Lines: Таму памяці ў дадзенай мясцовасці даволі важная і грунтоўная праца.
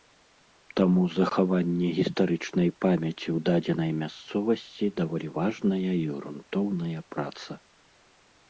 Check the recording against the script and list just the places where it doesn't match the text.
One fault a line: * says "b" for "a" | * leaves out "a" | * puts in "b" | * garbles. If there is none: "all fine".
* puts in "захаванне гістарычнай"